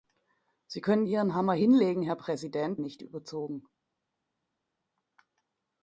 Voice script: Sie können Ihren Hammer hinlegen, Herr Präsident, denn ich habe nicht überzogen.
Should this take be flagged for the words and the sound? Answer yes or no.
yes